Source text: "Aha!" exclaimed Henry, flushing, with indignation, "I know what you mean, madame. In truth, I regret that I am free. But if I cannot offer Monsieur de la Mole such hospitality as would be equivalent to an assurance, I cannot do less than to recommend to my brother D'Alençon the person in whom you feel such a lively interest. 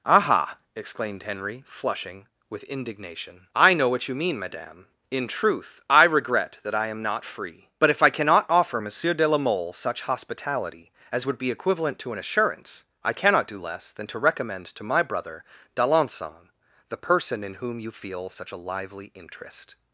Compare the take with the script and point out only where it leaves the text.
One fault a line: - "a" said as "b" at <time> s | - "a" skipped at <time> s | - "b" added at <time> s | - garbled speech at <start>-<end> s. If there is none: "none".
- "not" added at 7.0 s